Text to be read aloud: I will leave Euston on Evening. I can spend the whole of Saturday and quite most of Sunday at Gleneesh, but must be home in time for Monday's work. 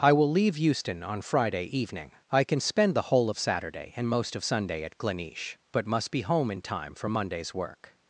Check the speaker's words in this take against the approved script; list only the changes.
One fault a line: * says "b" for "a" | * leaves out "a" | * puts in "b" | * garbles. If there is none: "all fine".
* puts in "Friday"
* leaves out "quite"